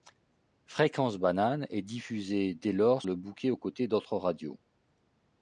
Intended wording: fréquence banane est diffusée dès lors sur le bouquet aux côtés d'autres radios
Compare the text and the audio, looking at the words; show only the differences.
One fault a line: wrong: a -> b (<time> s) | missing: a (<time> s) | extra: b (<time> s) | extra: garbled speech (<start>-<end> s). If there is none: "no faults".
missing: sur (3.0 s)